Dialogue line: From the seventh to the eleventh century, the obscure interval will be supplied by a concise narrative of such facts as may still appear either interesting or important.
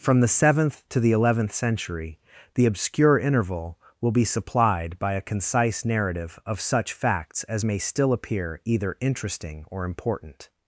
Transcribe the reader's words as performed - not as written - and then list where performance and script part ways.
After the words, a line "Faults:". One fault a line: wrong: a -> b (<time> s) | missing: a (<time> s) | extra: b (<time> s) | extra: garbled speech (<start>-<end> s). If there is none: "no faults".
From the seventh to the eleventh century, the obscure interval will be supplied by a concise narrative of such facts as may still appear either interesting or important.
Faults:
no faults